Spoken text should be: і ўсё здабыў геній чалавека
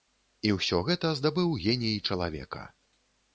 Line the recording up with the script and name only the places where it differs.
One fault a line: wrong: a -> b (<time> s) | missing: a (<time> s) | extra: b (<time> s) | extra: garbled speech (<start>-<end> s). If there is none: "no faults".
extra: гэта (0.9 s)